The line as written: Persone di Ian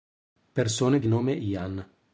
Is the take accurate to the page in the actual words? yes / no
no